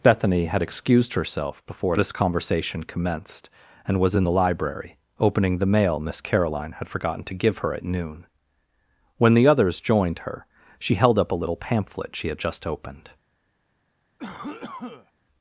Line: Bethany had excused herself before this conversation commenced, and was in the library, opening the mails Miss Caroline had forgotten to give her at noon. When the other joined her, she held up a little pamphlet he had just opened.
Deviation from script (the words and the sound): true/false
true